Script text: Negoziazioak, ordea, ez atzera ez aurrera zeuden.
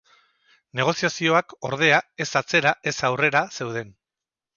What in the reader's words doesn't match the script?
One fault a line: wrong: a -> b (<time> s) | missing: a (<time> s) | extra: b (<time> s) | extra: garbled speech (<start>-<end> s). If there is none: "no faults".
no faults